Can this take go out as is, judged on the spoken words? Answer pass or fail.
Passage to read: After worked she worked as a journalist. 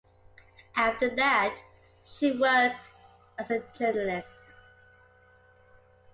fail